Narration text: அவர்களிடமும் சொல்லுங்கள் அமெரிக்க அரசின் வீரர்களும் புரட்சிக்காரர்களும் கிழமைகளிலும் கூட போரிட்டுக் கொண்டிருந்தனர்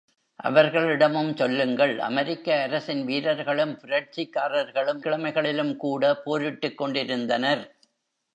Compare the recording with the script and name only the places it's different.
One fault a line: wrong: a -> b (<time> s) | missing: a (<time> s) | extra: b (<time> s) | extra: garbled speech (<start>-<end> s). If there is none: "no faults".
no faults